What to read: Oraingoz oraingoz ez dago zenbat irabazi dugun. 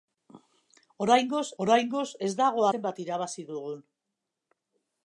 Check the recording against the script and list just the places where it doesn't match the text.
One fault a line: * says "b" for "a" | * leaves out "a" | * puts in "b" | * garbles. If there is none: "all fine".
all fine